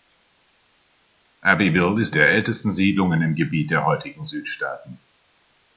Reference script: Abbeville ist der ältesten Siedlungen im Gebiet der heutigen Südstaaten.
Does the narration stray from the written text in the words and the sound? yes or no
no